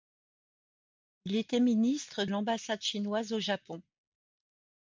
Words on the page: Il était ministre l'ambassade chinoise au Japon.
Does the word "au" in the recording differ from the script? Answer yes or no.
no